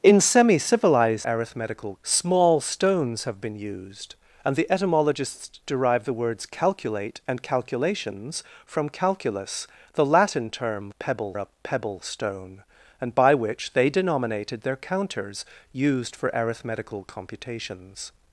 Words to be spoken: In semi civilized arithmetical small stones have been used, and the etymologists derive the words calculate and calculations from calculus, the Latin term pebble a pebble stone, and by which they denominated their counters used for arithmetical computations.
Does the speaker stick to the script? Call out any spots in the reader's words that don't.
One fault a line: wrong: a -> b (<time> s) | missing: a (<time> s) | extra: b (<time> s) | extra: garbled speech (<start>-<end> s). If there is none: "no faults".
no faults